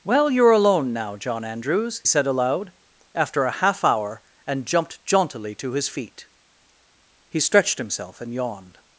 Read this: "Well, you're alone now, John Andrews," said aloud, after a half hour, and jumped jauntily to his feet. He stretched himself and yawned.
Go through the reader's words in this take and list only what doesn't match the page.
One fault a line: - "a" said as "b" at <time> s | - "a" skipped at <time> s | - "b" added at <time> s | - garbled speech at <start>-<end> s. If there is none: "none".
none